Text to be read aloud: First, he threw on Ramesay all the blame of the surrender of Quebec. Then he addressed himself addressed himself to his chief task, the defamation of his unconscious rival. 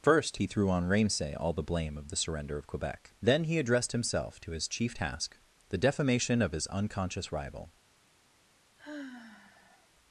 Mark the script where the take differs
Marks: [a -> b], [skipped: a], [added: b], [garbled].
First, he threw on Ramesay all the blame of the surrender of Quebec. Then he addressed himself [skipped: addressed himself] to his chief task, the defamation of his unconscious rival.